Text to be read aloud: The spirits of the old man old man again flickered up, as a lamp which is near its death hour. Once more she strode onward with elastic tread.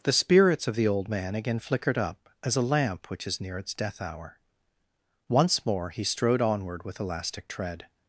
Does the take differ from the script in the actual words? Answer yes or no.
yes